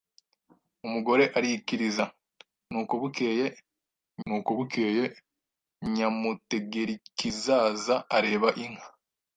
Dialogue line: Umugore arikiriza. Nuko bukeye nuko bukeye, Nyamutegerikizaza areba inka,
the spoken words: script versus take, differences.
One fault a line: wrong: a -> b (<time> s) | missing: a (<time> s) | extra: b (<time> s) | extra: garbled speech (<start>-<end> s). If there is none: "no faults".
no faults